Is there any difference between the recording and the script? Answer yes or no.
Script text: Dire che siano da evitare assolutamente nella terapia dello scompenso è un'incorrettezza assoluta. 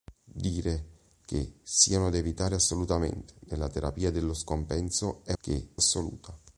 yes